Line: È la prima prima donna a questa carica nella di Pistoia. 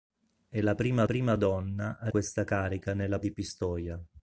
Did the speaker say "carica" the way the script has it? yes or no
yes